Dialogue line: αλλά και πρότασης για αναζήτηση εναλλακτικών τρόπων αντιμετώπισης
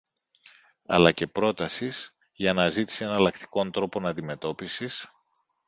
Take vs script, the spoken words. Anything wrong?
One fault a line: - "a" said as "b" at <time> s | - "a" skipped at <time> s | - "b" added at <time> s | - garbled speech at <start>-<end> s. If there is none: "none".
none